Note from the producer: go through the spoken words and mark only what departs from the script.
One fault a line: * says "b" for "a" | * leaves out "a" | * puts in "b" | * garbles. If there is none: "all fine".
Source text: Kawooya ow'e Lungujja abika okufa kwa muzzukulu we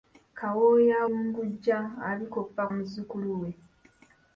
* leaves out "ow'e"
* leaves out "kwa"